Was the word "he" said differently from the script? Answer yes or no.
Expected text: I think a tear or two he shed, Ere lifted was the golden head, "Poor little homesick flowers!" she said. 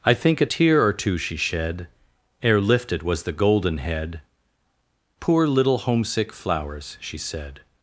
yes